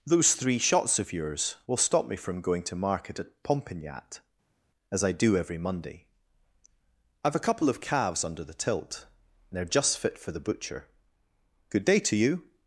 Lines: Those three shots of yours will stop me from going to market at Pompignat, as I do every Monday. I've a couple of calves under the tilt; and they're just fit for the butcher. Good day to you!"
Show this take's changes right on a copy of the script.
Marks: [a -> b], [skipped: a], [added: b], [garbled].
Those three shots of yours will stop me from going to market at Pompignat, as I do every Monday. I've a couple of calves under the tilt; and they're just fit for the butcher. Good day to you!"